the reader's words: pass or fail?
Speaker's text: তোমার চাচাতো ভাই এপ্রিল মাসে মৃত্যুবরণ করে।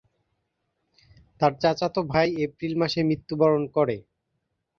fail